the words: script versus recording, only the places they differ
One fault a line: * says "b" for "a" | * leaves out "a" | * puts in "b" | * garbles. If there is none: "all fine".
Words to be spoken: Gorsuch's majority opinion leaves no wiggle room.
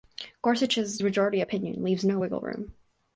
all fine